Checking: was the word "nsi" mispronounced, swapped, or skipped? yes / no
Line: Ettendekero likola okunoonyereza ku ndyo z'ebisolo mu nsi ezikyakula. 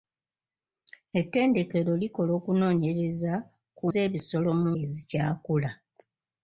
yes